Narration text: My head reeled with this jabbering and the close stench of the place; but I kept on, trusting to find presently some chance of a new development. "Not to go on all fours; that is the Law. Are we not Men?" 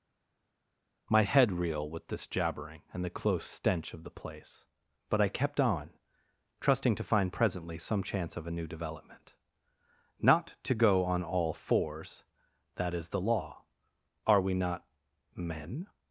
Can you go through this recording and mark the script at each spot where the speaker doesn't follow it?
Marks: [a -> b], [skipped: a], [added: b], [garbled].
My head [reeled -> reel] with this jabbering and the close stench of the place; but I kept on, trusting to find presently some chance of a new development. "Not to go on all fours; that is the Law. Are we not Men?"